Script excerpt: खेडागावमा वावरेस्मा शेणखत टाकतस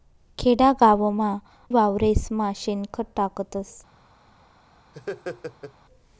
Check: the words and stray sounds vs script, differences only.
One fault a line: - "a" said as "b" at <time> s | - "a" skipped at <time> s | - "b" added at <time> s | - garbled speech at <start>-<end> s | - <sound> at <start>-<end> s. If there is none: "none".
- laugh at 4.9-5.7 s